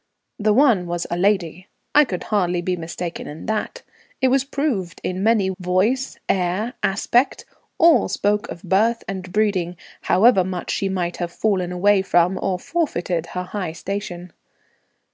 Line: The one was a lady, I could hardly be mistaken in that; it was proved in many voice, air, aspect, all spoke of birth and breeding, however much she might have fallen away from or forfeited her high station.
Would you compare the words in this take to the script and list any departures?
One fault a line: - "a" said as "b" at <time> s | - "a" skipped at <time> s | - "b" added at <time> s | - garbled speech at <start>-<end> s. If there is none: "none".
none